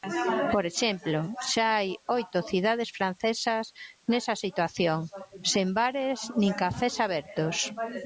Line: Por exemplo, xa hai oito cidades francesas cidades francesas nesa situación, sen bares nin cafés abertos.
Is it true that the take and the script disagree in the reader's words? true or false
true